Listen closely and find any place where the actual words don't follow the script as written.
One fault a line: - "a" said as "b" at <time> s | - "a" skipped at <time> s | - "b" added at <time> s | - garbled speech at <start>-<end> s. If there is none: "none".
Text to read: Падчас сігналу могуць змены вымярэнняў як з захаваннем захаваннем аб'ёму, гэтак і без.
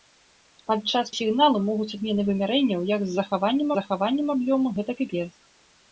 none